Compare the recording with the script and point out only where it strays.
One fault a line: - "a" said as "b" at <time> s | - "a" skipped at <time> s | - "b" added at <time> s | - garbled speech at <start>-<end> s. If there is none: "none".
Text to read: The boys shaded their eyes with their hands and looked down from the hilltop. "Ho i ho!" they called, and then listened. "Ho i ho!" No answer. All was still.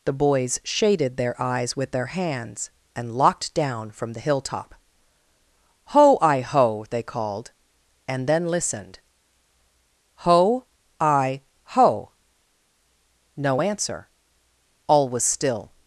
- "looked" said as "locked" at 3.1 s